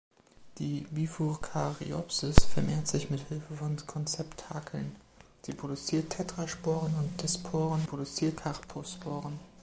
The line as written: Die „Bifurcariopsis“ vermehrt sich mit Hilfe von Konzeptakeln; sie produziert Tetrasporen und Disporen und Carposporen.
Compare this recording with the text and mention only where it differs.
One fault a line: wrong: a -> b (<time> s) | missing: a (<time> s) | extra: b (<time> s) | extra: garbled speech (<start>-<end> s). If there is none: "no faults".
wrong: und -> produziert (7.8 s)